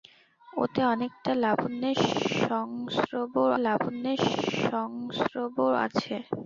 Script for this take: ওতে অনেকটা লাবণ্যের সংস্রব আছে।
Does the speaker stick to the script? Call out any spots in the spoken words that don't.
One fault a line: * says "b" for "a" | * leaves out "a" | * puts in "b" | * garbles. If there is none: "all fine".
* puts in "লাবণ্যের সংস্রব"